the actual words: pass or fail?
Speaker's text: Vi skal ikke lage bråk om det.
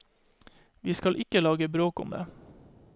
pass